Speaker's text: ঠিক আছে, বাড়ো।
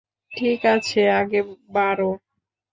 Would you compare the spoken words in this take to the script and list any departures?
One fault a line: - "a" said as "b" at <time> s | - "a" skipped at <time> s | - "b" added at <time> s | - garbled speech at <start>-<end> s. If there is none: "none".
- "আগে" added at 1.2 s